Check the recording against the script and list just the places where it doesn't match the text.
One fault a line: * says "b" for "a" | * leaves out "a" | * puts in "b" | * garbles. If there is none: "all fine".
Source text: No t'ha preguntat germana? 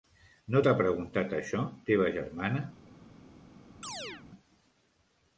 * puts in "això teva"